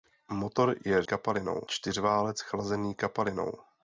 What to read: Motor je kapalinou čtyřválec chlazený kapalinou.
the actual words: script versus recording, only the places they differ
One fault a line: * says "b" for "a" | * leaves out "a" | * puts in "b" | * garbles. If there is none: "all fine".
all fine